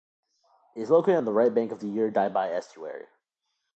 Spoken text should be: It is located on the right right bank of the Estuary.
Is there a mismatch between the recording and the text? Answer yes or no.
yes